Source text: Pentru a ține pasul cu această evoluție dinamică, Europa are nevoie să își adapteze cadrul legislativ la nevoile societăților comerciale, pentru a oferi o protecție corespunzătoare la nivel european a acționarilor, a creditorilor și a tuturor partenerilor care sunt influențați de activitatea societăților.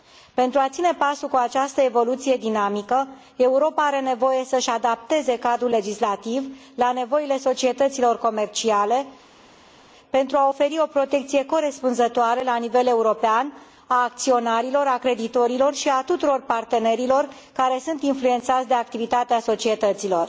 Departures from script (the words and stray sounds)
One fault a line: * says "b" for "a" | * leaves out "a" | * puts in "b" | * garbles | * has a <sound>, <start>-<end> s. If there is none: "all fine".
all fine